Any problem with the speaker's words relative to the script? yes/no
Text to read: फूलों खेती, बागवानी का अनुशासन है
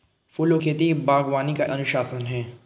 no